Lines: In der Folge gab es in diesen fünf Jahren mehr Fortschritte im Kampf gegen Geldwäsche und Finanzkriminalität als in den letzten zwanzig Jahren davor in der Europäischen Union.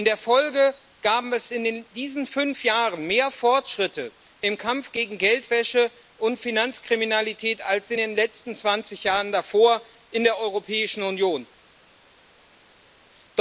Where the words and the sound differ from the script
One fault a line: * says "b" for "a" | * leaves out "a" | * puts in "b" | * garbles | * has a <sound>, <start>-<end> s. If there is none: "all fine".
all fine